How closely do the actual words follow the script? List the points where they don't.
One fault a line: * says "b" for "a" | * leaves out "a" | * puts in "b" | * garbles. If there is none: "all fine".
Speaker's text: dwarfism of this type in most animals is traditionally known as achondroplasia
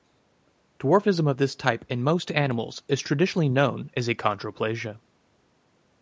all fine